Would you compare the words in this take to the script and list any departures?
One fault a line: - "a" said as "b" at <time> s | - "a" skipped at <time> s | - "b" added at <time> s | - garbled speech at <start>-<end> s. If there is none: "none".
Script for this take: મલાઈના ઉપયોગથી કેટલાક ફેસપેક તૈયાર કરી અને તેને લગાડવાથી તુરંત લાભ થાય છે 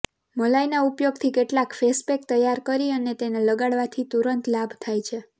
none